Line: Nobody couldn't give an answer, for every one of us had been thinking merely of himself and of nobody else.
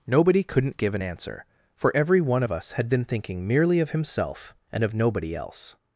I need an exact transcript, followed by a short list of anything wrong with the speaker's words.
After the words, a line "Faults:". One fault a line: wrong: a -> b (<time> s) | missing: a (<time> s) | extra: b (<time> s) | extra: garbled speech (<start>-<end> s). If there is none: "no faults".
Nobody couldn't give an answer, for every one of us had been thinking merely of himself and of nobody else.
Faults:
no faults